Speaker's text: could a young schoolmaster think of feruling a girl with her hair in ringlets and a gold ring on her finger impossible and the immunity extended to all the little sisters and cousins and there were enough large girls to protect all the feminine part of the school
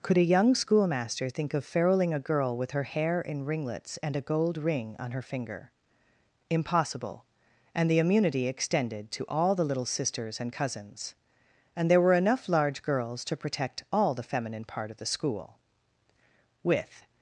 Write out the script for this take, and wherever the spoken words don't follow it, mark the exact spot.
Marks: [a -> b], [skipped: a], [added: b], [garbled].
could a young schoolmaster think of feruling a girl with her hair in ringlets and a gold ring on her finger impossible and the immunity extended to all the little sisters and cousins and there were enough large girls to protect all the feminine part of the school [added: with]